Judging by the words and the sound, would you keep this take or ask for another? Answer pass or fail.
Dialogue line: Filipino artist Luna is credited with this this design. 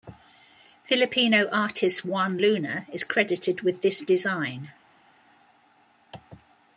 fail